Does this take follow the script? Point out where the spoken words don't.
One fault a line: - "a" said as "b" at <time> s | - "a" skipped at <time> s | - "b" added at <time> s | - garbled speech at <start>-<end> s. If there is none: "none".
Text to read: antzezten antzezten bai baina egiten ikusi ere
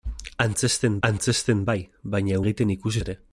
none